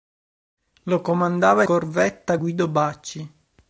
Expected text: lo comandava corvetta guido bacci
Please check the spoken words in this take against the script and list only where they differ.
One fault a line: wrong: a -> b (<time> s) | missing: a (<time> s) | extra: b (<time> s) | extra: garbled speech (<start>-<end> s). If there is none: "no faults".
no faults